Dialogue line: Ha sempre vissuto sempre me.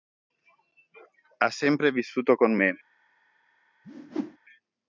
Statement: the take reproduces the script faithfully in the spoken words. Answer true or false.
false